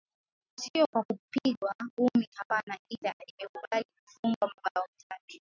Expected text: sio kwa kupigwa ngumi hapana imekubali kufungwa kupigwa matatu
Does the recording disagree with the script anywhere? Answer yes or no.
yes